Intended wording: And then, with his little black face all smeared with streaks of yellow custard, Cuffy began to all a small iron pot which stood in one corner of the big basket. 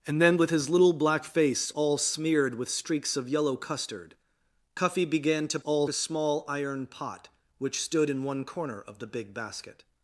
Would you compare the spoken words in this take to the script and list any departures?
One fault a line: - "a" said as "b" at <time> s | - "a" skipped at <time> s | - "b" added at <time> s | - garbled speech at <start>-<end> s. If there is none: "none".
none